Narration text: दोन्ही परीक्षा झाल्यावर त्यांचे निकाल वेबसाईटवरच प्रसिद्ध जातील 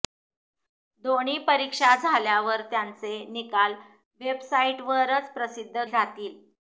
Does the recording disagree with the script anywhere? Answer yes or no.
no